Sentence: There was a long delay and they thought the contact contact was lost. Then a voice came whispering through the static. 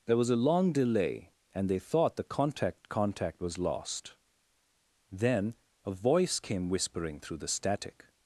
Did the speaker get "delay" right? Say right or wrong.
right